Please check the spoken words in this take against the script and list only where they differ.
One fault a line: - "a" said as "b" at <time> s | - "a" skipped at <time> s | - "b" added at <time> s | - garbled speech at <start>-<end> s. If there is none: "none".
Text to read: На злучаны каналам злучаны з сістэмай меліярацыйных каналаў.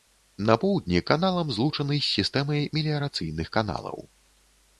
- "злучаны" said as "поўдні" at 0.6 s